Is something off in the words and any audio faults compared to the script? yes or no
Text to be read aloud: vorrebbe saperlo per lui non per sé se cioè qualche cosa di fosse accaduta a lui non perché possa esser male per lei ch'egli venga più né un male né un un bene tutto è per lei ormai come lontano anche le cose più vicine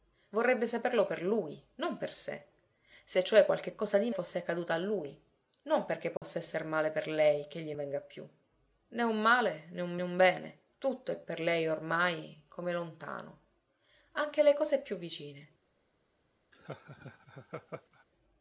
yes